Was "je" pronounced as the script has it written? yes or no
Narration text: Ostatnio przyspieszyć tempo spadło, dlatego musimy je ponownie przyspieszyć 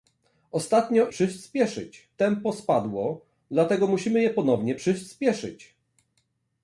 yes